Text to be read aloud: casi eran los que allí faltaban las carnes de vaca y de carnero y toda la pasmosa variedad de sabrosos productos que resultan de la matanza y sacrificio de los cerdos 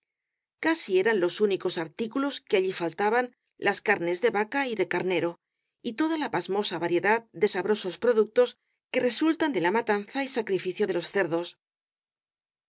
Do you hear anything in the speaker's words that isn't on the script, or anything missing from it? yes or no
yes